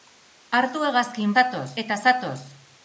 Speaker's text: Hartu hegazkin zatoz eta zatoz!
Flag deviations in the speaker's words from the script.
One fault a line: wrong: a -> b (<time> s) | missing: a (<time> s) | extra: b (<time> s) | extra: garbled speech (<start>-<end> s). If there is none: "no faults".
no faults